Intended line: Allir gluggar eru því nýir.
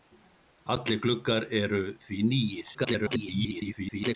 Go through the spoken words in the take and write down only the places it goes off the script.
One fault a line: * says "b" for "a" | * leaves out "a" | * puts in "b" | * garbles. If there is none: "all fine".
* garbles